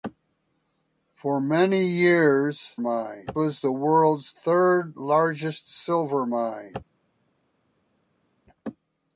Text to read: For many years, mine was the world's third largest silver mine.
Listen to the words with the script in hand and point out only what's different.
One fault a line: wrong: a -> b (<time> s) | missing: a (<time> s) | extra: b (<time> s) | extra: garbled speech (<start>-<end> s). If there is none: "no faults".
no faults